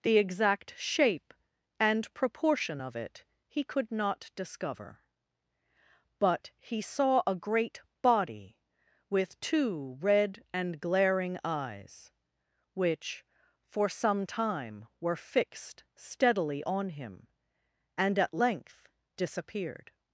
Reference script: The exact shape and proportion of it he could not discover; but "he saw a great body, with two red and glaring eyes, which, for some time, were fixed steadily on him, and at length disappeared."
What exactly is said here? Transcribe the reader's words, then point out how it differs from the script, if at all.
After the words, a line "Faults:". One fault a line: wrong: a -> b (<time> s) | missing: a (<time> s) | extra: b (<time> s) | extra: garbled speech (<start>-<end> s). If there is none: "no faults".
The exact shape and proportion of it he could not discover; but "he saw a great body, with two red and glaring eyes, which, for some time, were fixed steadily on him, and at length disappeared."
Faults:
no faults